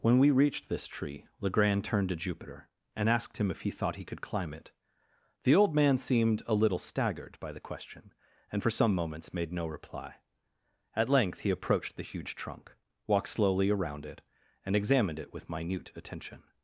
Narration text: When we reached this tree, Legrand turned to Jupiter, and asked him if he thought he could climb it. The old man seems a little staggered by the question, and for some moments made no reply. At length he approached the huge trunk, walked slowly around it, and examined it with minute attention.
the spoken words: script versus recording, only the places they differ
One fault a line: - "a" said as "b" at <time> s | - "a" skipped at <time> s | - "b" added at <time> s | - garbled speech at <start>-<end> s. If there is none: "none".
- "seems" said as "seemed" at 6.0 s